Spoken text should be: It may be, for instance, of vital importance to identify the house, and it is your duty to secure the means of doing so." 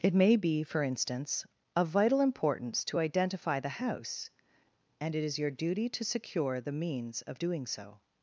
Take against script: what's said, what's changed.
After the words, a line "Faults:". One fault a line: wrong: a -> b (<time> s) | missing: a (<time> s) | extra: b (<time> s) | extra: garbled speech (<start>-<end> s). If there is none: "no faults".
It may be, for instance, of vital importance to identify the house, and it is your duty to secure the means of doing so."
Faults:
no faults